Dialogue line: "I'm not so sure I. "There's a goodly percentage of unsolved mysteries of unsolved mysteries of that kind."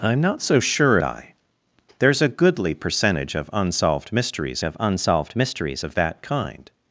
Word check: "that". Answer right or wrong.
right